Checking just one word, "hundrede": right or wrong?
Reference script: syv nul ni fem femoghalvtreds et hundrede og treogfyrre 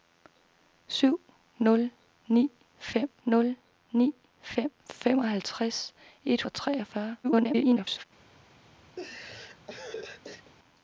wrong